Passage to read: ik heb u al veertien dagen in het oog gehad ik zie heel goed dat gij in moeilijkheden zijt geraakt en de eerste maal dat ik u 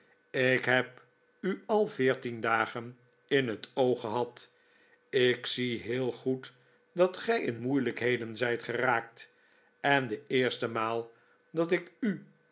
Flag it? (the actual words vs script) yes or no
no